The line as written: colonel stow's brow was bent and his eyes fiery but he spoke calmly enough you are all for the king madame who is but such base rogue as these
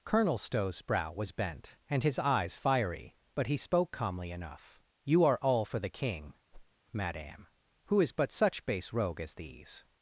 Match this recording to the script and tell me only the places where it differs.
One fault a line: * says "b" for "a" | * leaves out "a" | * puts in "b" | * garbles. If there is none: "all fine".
all fine